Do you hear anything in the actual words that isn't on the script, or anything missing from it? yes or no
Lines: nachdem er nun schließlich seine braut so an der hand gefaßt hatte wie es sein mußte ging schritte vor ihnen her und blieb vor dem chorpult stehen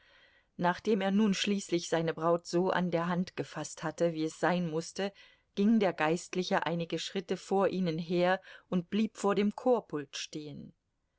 yes